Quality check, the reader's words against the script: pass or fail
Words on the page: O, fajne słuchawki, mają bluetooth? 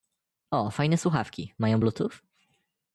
pass